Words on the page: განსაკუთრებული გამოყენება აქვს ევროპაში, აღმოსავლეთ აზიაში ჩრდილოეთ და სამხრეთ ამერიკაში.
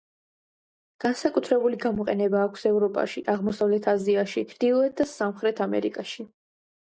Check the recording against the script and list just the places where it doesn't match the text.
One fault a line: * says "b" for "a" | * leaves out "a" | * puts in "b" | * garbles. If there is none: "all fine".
all fine